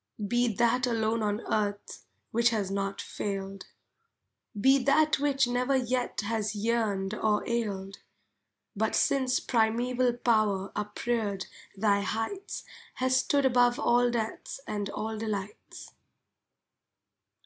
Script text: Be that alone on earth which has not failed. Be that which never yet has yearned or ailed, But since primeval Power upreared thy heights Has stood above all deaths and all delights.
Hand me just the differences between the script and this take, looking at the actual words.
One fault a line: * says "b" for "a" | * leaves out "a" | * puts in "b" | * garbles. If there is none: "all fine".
all fine